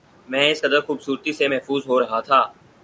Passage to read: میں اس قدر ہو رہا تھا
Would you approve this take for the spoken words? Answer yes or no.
no